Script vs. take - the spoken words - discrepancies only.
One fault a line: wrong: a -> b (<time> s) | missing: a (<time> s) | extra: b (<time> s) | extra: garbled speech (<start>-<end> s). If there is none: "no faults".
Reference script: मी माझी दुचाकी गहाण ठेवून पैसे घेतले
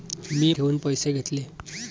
missing: माझी दुचाकी गहाण (0.5 s)